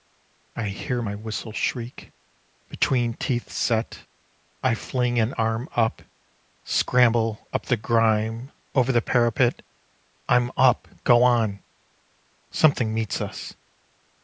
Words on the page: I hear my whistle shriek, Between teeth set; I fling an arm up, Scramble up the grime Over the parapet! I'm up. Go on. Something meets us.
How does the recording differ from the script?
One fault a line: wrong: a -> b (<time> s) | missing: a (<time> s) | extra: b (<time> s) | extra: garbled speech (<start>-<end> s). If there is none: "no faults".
no faults